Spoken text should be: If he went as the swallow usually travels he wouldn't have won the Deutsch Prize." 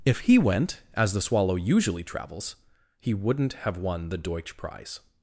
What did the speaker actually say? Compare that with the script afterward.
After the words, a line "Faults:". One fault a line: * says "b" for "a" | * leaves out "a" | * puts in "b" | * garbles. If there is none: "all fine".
If he went as the swallow usually travels he wouldn't have won the Deutsch Prize."
Faults:
all fine